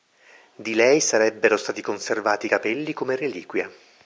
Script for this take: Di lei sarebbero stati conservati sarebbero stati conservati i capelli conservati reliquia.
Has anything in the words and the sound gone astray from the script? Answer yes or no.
yes